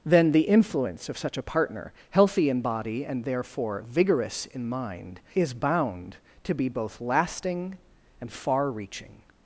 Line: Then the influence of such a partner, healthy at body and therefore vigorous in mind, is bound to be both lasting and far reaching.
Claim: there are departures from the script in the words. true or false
true